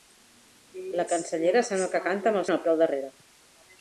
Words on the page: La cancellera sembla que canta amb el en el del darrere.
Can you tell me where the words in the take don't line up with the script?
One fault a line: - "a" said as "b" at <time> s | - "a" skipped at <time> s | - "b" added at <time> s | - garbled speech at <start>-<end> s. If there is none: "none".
none